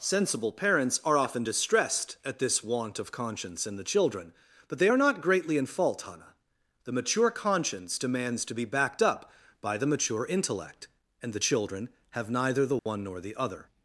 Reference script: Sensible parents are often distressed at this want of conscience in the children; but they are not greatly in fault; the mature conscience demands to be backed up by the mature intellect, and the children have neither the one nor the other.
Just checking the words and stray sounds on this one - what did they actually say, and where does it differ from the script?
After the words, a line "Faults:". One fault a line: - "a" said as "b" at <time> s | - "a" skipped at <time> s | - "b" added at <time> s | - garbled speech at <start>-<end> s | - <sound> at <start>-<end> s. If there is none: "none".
Sensible parents are often distressed at this want of conscience in the children; but they are not greatly in fault; hannah the mature conscience demands to be backed up by the mature intellect, and the children have neither the one nor the other.
Faults:
- "hannah" added at 6.0 s
- dropout at 12.8-12.9 s